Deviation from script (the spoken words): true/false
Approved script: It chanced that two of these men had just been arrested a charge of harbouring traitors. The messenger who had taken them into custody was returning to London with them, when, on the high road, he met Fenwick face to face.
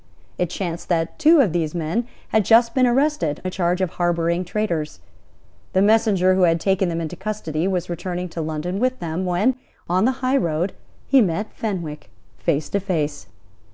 false